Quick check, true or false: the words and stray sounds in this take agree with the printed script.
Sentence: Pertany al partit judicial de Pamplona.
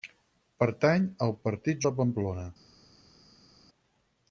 false